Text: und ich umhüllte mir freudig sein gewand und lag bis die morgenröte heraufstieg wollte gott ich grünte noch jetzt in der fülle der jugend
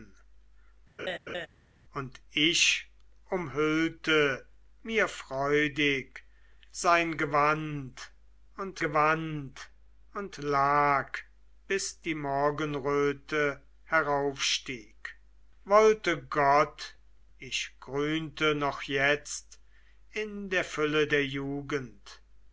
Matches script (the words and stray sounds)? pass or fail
fail